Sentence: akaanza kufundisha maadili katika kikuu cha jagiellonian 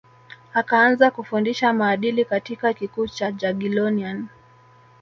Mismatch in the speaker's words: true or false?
false